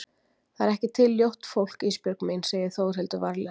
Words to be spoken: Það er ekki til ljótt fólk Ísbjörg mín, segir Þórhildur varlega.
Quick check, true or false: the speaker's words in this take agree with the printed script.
true